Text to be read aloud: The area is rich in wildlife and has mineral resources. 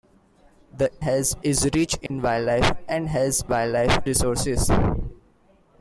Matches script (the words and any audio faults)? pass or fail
fail